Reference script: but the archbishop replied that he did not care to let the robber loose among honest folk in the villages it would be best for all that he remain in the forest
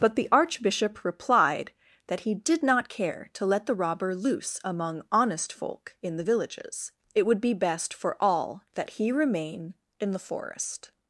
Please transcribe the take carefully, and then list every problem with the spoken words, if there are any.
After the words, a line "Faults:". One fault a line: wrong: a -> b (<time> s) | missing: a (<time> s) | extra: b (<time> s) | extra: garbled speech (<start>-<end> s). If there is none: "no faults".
but the archbishop replied that he did not care to let the robber loose among honest folk in the villages it would be best for all that he remain in the forest
Faults:
no faults